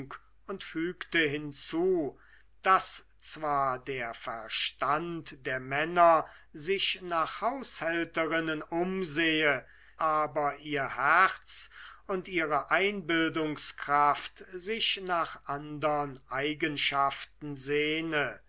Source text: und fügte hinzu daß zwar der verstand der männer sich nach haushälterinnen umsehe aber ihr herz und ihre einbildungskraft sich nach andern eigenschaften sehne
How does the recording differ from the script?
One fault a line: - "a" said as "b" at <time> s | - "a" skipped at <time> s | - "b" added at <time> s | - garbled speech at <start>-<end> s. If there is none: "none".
none